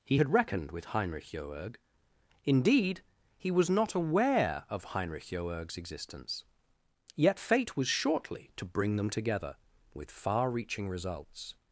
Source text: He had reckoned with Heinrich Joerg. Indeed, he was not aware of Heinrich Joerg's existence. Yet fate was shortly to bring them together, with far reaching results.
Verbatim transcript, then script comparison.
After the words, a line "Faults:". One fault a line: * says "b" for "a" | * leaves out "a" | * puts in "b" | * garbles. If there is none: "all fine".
He had reckoned with Heinrich Joerg. Indeed, he was not aware of Heinrich Joerg's existence. Yet fate was shortly to bring them together, with far reaching results.
Faults:
all fine